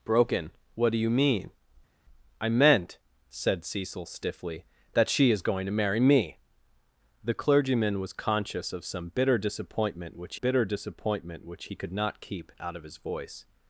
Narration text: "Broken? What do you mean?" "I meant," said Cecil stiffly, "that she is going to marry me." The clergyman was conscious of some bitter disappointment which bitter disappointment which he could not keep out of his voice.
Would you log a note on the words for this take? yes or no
no